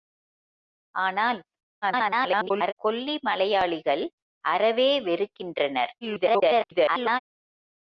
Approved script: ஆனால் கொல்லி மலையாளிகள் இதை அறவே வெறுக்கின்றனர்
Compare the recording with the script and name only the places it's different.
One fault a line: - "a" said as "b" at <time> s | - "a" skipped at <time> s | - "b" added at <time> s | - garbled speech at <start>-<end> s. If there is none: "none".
- garbled speech at 1.8-2.7 s
- "இதை" skipped at 4.0 s
- garbled speech at 6.0-7.2 s